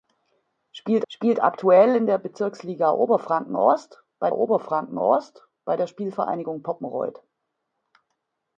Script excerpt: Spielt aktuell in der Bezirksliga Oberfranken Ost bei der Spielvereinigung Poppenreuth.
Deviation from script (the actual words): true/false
true